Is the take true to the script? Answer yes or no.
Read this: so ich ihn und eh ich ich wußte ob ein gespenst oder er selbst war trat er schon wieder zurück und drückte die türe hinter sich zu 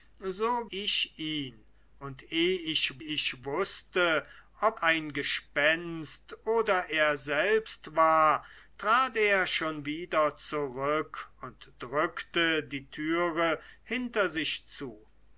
yes